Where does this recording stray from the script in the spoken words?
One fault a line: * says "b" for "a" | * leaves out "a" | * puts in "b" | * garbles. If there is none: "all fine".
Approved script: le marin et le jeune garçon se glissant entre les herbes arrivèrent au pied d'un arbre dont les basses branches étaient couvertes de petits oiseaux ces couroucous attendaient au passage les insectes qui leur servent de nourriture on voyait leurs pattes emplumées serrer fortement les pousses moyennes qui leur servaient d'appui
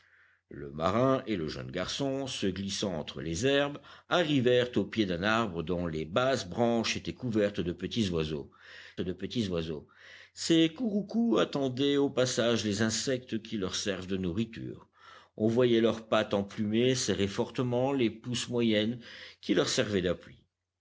* puts in "de petits oiseaux"